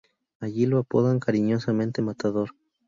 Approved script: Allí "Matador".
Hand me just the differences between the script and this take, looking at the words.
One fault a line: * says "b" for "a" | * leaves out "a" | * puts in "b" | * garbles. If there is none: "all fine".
* puts in "lo apodan cariñosamente"